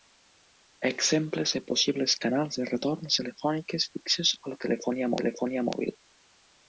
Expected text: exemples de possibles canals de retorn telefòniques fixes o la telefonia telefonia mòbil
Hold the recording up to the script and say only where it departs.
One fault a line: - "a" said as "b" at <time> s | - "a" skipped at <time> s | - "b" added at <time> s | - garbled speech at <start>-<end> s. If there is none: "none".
none